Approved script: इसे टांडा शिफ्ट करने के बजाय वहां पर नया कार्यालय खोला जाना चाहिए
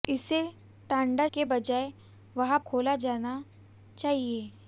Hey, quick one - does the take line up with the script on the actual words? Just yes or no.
no